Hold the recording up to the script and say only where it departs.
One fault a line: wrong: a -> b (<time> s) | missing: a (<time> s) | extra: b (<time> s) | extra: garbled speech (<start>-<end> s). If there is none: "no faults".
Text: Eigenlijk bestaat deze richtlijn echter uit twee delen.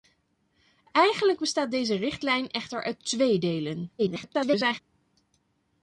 extra: garbled speech (4.0-4.8 s)